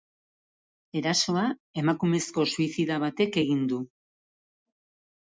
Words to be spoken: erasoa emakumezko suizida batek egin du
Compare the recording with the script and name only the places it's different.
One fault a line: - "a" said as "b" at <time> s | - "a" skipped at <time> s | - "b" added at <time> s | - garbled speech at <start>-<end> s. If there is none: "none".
none